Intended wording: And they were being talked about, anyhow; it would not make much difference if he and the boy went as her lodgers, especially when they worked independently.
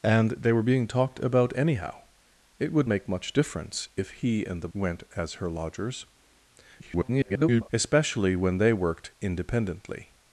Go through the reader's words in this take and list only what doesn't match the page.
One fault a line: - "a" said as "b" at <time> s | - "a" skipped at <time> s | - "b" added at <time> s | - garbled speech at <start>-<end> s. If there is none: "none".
- "not" skipped at 2.9 s
- "boy" skipped at 4.7 s
- garbled speech at 6.8-7.7 s